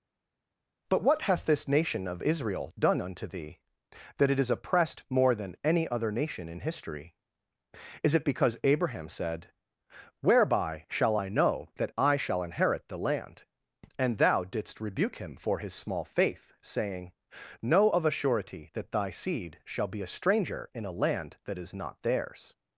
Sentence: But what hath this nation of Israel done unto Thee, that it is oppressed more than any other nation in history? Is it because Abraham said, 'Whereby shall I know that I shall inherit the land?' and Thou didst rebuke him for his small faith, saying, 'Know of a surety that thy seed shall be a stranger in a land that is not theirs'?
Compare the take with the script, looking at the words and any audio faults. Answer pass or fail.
pass